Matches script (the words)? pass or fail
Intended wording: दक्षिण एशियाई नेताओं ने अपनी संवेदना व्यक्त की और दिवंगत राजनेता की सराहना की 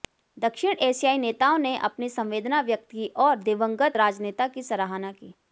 pass